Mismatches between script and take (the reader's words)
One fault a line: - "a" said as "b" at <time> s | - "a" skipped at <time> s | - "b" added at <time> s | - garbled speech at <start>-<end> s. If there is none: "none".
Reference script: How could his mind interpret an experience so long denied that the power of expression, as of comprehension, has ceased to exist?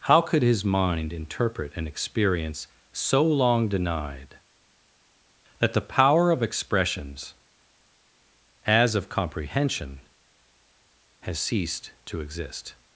- "expression" said as "expressions" at 6.4 s